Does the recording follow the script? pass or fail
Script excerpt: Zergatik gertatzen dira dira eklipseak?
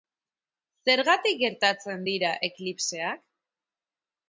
fail